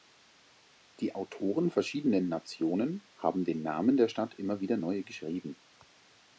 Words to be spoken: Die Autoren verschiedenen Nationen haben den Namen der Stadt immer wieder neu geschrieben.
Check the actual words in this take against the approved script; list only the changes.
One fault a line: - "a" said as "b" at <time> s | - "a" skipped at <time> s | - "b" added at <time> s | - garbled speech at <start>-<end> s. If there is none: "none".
none